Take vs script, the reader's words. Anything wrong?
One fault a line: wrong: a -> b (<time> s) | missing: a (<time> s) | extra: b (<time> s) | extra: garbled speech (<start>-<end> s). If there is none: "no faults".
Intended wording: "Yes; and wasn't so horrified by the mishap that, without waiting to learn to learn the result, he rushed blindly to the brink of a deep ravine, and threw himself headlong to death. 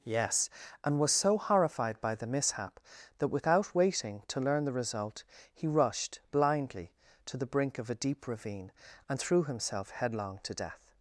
wrong: wasn't -> was (1.0 s)
missing: to learn (4.7 s)